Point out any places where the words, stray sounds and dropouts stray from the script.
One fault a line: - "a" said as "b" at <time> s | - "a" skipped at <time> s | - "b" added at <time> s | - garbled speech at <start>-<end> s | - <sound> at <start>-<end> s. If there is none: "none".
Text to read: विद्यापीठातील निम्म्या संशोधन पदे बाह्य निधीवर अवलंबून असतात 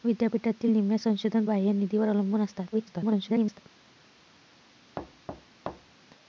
- "पदे" skipped at 1.4 s
- garbled speech at 2.7-3.6 s
- thud at 5.0-6.0 s